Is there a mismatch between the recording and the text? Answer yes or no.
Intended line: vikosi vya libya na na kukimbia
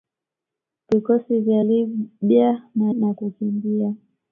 no